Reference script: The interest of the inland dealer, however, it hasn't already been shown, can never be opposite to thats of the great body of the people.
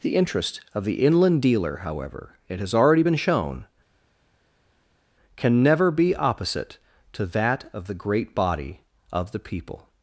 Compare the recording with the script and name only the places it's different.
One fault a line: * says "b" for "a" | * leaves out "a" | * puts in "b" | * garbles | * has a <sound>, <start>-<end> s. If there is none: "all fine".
* says "has" for "hasn't"
* says "that" for "thats"